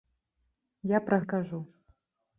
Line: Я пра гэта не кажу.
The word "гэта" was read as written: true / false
false